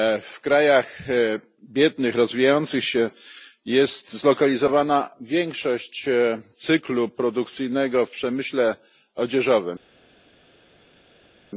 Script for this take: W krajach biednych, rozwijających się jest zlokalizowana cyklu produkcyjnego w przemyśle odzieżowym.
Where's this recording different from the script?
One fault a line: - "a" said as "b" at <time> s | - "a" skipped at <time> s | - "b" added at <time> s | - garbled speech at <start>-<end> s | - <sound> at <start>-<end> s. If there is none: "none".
- "większość" added at 5.2 s